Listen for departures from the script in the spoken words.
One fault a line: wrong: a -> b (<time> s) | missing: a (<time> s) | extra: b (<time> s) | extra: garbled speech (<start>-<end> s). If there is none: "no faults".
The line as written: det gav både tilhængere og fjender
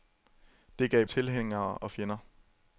missing: både (1.1 s)